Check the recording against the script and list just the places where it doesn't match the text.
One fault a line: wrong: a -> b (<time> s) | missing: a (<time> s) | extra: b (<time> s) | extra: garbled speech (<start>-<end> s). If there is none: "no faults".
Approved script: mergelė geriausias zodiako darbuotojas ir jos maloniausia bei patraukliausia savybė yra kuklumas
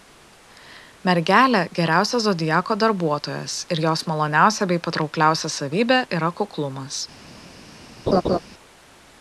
no faults